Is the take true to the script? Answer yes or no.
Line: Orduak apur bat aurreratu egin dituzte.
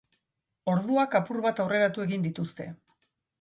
yes